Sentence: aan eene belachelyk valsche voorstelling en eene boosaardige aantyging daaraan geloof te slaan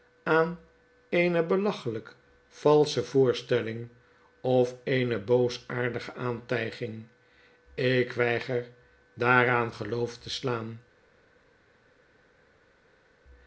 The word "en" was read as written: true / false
false